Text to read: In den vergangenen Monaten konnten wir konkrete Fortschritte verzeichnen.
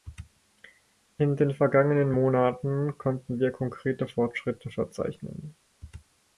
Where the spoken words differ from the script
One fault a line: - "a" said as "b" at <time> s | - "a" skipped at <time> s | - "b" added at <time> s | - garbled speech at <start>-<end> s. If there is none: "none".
none